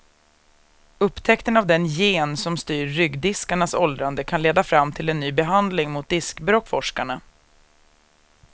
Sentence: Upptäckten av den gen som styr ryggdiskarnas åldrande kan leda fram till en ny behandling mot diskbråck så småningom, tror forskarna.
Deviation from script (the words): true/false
true